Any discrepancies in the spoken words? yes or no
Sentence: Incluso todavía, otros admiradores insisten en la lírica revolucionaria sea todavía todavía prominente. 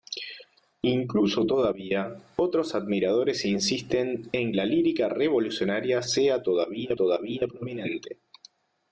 no